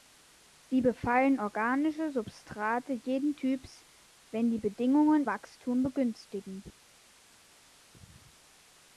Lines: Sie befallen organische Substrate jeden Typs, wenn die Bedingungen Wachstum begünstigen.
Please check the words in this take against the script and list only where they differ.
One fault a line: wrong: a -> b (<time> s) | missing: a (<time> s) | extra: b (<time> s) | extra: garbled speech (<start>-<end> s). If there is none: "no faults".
no faults